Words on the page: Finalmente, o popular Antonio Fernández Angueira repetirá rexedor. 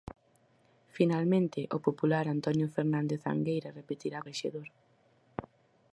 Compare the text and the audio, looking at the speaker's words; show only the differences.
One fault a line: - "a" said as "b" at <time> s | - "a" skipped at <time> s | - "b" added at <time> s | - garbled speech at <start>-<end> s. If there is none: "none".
none